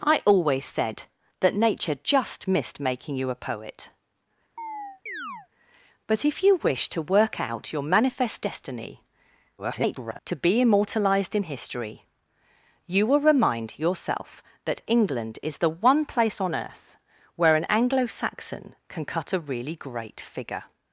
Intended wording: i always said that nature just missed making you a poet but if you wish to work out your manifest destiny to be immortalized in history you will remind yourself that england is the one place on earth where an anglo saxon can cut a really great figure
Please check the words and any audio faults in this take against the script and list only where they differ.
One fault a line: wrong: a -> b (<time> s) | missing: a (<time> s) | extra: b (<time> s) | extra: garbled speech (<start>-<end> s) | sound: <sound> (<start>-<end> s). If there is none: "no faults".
sound: chirp (4.6-5.5 s)
extra: garbled speech (9.6-10.2 s)